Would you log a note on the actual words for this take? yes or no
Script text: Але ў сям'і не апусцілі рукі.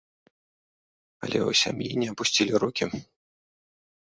no